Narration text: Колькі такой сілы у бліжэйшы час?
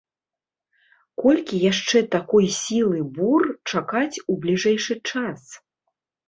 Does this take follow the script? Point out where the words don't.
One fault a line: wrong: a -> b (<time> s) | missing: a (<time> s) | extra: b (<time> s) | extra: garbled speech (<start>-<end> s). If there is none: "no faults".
extra: яшчэ (1.7 s)
extra: бур чакаць (3.2 s)